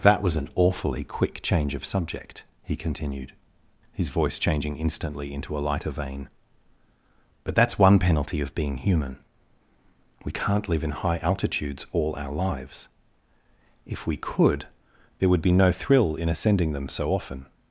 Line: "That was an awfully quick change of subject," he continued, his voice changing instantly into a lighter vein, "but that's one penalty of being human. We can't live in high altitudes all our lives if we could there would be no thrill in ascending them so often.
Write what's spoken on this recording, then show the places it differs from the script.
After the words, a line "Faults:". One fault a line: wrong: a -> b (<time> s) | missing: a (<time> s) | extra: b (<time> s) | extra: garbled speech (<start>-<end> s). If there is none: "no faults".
"That was an awfully quick change of subject," he continued, his voice changing instantly into a lighter vein, "but that's one penalty of being human. We can't live in high altitudes all our lives if we could there would be no thrill in ascending them so often.
Faults:
no faults